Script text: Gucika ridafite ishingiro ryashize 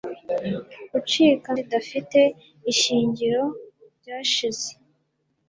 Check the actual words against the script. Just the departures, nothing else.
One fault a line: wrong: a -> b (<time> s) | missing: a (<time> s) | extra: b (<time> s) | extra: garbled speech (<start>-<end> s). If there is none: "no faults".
no faults